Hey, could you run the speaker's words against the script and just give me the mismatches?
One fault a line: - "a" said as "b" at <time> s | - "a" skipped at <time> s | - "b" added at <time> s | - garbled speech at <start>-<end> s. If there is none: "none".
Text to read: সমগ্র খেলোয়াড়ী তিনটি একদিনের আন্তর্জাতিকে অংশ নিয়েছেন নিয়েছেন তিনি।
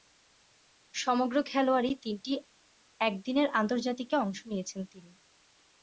- "নিয়েছেন" skipped at 4.8 s